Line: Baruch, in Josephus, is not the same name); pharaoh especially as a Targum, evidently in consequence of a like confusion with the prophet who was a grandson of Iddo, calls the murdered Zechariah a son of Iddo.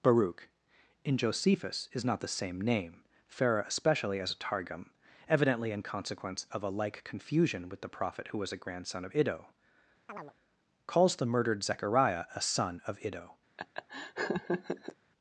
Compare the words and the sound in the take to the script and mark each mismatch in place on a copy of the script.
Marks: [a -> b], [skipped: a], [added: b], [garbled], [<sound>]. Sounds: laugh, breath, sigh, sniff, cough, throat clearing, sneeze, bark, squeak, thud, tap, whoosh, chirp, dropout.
Baruch, in Josephus, is not the same name); pharaoh especially as a Targum, evidently in consequence of a like confusion with the prophet who was a grandson of Iddo, [chirp] calls the murdered Zechariah a son of Iddo. [laugh]